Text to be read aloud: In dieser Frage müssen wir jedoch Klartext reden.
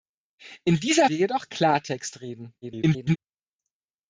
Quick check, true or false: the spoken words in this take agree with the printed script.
false